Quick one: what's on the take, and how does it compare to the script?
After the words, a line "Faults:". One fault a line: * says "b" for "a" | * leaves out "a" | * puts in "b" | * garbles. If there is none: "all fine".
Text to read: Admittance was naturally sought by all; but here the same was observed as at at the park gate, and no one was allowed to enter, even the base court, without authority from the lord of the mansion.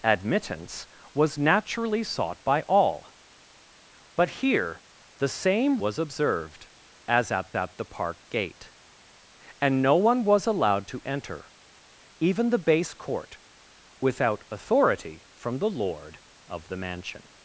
Admittance was naturally sought by all; but here the same was observed as at at the park gate, and no one was allowed to enter, even the base court, without authority from the lord of the mansion.
Faults:
all fine